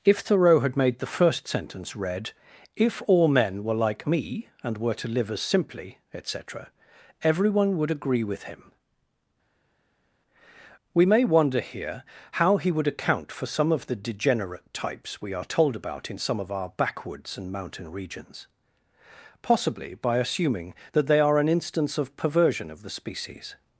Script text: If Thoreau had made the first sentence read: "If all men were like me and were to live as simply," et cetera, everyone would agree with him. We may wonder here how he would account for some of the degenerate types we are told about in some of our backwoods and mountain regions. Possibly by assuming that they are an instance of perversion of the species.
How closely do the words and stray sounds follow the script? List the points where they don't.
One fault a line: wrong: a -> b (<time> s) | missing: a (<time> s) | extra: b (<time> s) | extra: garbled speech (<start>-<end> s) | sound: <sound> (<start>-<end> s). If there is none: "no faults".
no faults